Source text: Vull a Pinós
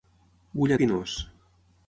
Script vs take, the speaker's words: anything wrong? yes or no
no